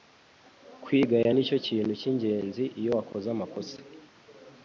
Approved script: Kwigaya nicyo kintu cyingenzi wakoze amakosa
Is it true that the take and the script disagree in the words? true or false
true